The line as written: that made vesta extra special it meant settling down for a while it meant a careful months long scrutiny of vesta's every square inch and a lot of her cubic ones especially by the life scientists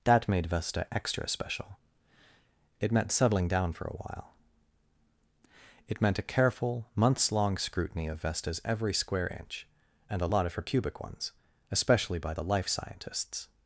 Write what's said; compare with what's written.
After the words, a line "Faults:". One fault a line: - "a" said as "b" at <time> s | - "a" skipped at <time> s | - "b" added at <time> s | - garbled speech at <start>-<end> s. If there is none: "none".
that made vesta extra special it meant settling down for a while it meant a careful months long scrutiny of vesta's every square inch and a lot of her cubic ones especially by the life scientists
Faults:
none